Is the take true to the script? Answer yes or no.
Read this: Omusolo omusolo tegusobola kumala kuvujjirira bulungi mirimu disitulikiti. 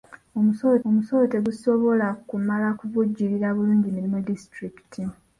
yes